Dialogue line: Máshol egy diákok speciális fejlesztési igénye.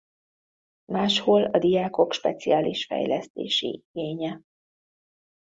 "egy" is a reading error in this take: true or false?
true